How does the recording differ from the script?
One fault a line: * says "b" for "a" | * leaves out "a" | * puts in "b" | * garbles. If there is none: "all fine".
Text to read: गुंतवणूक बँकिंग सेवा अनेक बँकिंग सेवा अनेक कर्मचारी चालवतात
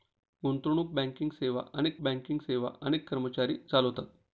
all fine